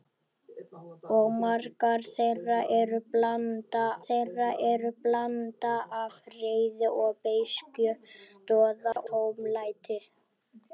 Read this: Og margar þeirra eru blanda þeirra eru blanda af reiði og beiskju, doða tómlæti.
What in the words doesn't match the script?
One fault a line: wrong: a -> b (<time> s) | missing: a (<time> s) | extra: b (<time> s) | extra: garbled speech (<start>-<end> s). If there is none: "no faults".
no faults